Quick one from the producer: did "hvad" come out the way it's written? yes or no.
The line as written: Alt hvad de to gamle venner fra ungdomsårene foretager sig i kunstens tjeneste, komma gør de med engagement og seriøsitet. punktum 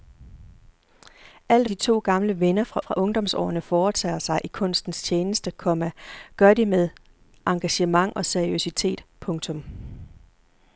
no